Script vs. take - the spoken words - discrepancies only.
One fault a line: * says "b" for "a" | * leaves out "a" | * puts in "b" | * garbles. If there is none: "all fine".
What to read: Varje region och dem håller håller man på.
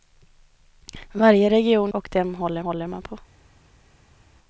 all fine